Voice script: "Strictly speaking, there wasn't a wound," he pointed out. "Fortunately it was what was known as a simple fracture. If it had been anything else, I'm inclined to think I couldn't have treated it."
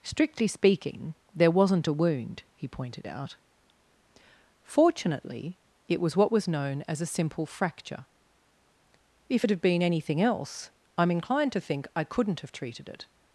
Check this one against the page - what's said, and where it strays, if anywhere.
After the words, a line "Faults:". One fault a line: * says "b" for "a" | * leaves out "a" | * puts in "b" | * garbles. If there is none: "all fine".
"Strictly speaking, there wasn't a wound," he pointed out. "Fortunately it was what was known as a simple fracture. If it had been anything else, I'm inclined to think I couldn't have treated it."
Faults:
all fine